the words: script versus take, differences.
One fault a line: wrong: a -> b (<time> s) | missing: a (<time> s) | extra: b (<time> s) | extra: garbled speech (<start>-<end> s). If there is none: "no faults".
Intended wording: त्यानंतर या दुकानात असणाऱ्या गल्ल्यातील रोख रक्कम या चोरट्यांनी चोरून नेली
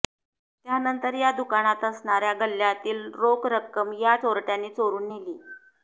no faults